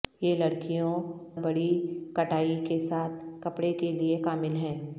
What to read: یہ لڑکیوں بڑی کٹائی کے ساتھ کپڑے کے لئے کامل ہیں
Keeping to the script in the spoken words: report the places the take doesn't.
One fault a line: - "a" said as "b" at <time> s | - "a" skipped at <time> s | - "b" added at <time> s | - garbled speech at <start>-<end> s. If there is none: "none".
none